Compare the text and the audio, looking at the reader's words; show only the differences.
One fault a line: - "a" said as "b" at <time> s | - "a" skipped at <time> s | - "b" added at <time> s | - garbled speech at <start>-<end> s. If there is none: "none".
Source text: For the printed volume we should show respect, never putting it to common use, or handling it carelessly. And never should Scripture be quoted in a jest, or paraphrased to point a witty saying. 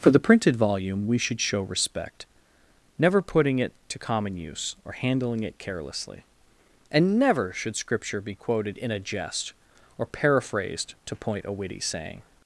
none